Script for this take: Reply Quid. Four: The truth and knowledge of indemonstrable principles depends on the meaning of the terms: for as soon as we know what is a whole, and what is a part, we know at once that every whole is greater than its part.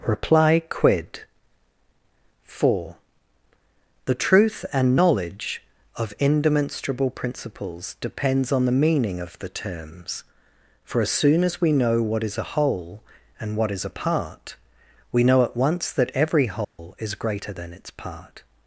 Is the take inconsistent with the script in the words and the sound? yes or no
yes